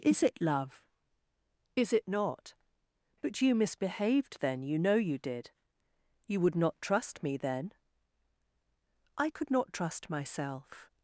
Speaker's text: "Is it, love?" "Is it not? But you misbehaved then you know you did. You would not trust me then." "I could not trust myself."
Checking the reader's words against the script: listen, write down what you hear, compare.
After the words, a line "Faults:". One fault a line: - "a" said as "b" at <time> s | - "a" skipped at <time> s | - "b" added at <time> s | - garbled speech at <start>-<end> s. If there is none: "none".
"Is it, love?" "Is it not? But you misbehaved then you know you did. You would not trust me then." "I could not trust myself."
Faults:
none